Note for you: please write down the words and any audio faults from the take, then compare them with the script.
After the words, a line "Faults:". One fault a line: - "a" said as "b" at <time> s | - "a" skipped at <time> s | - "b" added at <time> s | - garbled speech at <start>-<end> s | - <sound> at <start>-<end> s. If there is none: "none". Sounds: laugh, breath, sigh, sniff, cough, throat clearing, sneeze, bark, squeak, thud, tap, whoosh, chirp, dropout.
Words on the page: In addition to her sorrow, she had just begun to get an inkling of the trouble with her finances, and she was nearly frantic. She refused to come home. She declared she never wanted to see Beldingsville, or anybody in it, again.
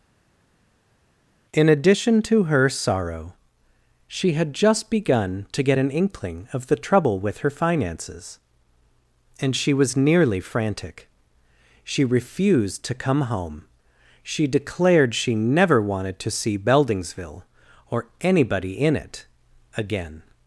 In addition to her sorrow, she had just begun to get an inkling of the trouble with her finances, and she was nearly frantic. She refused to come home. She declared she never wanted to see Beldingsville, or anybody in it, again.
Faults:
none